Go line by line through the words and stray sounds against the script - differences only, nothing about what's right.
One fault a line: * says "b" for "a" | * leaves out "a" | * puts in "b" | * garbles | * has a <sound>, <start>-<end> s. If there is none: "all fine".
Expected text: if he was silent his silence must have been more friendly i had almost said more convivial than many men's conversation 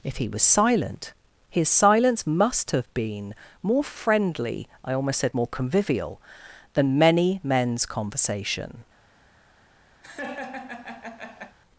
* leaves out "had"
* has a laugh, 10.0-11.6 s